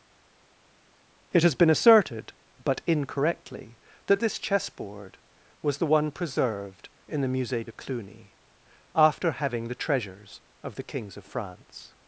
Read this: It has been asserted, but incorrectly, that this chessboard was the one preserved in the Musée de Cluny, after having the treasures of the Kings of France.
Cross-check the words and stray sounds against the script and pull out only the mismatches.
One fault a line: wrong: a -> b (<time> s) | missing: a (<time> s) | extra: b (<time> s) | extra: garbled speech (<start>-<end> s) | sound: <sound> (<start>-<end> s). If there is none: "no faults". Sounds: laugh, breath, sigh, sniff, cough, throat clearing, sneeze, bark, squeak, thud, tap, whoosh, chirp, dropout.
no faults